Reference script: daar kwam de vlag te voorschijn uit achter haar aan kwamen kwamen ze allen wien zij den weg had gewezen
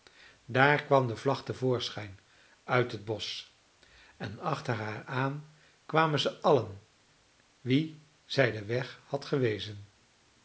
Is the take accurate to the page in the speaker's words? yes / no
no